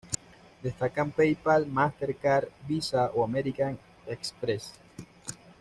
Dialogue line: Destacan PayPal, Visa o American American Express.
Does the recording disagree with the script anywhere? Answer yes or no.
yes